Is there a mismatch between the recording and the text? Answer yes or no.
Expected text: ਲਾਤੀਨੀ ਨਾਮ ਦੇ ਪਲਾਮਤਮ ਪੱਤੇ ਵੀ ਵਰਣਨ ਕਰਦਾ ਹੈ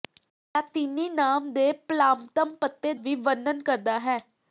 no